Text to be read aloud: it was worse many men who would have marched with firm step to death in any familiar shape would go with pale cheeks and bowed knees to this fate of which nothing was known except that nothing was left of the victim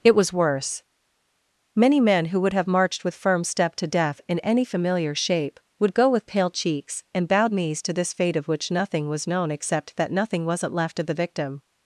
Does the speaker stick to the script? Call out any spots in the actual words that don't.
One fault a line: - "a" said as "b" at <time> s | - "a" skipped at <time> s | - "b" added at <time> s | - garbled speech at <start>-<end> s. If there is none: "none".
- "was" said as "wasn't" at 10.4 s